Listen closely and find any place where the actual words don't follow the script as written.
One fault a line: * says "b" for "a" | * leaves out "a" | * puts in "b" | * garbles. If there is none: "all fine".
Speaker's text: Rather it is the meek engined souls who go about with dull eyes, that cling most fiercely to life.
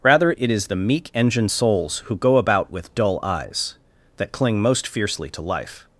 all fine